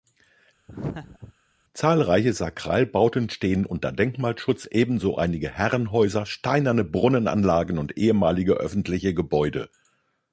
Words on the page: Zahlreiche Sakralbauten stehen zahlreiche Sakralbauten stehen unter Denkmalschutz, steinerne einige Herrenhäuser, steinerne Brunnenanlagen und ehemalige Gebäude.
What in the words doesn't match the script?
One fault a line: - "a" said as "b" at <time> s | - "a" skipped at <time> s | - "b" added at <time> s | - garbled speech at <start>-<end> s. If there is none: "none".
- "zahlreiche Sakralbauten stehen" skipped at 3.7 s
- "steinerne" said as "ebenso" at 4.7 s
- "öffentliche" added at 8.5 s